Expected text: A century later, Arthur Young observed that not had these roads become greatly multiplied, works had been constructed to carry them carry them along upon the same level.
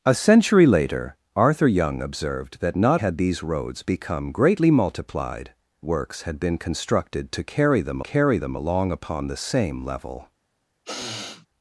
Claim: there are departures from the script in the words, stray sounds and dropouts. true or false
true